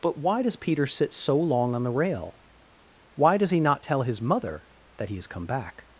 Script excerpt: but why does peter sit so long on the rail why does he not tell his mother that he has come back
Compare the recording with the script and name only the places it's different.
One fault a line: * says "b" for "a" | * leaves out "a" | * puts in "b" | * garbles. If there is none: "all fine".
all fine